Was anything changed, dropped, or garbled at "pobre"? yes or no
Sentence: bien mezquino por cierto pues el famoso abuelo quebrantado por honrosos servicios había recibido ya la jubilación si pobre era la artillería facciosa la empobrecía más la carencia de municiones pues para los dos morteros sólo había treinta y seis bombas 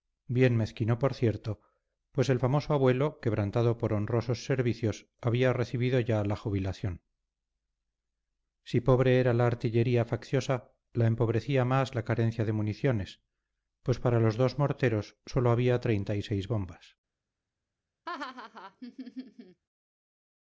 no